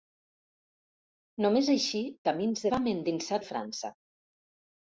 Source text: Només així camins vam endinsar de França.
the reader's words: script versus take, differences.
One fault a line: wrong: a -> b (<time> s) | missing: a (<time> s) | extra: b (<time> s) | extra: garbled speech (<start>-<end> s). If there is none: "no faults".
no faults